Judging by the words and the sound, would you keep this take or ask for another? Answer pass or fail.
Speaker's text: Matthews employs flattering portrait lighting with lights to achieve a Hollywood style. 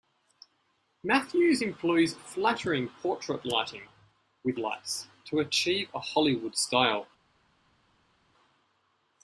pass